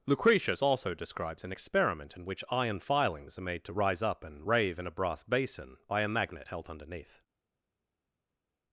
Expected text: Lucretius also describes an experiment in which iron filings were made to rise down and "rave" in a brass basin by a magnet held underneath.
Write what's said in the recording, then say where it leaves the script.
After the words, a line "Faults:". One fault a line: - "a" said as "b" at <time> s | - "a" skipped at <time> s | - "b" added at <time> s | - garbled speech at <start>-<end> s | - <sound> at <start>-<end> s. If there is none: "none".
Lucretius also describes an experiment in which iron filings are made to rise up and "rave" in a brass basin by a magnet held underneath.
Faults:
- "were" said as "are" at 3.4 s
- "down" said as "up" at 4.0 s